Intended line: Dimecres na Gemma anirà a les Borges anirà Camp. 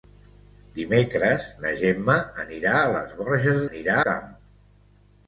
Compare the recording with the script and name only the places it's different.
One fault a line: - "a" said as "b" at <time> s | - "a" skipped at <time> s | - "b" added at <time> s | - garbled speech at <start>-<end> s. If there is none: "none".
none